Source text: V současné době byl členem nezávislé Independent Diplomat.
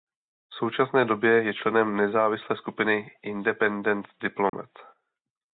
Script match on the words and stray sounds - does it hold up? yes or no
no